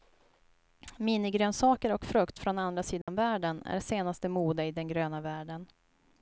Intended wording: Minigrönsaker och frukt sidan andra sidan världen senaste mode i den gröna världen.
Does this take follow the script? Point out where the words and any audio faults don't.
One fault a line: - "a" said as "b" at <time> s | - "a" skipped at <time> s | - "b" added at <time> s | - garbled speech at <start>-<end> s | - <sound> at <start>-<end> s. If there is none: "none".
- "sidan" said as "från" at 2.4 s
- dropout at 3.0-3.1 s
- "är" added at 3.6 s